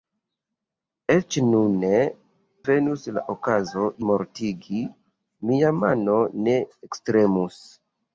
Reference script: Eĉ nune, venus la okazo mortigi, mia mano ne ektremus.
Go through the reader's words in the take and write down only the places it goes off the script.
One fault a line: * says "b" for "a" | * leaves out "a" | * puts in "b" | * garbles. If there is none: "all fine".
all fine